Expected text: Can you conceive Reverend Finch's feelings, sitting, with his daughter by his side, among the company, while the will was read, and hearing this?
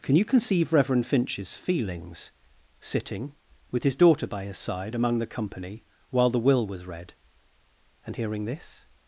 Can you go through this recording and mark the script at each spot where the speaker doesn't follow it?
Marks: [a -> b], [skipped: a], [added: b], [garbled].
Can you conceive Reverend Finch's feelings, sitting, with his daughter by his side, among the company, while the will was read, and hearing this?